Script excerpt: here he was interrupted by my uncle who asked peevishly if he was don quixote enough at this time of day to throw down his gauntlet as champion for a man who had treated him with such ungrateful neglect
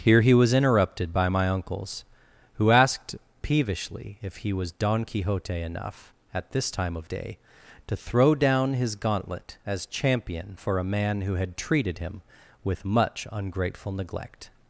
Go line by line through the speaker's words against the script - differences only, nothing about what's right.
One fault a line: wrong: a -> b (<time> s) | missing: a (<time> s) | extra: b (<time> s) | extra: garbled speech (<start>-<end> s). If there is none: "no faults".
wrong: uncle -> uncles (1.5 s)
wrong: such -> much (12.8 s)